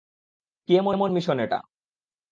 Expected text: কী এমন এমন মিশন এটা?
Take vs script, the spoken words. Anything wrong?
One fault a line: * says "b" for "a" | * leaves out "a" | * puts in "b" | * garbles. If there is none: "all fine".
all fine